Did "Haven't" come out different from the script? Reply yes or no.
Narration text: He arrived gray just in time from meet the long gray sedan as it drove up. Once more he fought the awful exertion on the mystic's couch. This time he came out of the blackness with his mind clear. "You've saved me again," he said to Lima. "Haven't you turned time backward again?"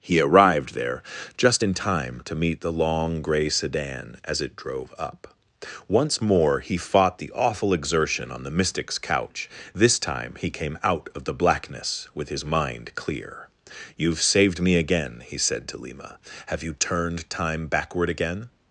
yes